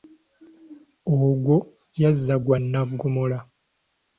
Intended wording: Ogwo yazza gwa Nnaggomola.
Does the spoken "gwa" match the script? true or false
true